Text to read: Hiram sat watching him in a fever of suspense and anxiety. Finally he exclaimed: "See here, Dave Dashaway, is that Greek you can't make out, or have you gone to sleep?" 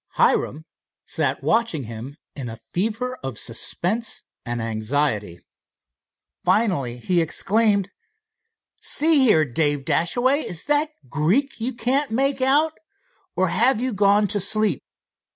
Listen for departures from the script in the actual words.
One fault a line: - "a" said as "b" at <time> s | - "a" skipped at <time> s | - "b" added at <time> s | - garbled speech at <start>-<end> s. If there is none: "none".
none